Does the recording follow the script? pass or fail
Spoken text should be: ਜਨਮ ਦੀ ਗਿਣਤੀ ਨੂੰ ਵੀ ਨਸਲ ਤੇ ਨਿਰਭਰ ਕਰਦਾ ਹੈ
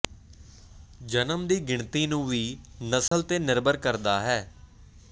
pass